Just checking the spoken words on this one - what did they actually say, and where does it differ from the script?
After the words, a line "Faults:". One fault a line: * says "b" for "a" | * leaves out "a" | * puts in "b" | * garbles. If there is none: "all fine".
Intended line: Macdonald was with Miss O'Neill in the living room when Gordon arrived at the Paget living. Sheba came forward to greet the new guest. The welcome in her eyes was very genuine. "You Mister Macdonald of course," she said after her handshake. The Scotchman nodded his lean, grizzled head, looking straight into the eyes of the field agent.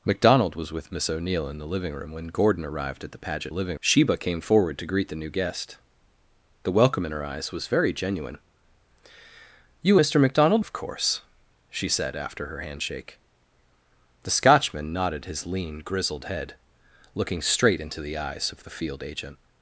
Macdonald was with Miss O'Neill in the living room when Gordon arrived at the Paget living. Sheba came forward to greet the new guest. The welcome in her eyes was very genuine. "You Mister Macdonald of course," she said after her handshake. The Scotchman nodded his lean, grizzled head, looking straight into the eyes of the field agent.
Faults:
all fine